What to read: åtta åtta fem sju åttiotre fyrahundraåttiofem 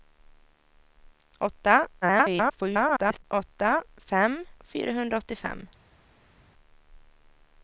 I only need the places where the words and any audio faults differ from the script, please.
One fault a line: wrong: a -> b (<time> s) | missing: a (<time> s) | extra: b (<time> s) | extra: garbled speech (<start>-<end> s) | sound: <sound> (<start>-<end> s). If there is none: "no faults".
extra: garbled speech (2.0-3.2 s)
missing: sju åttiotre (4.4 s)